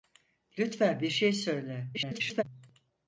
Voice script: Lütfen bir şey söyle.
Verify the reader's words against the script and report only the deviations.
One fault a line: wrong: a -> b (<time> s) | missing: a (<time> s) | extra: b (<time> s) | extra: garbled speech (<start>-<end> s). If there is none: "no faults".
extra: garbled speech (1.9-2.4 s)